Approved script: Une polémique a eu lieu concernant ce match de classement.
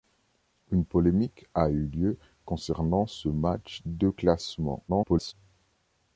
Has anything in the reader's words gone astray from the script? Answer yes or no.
yes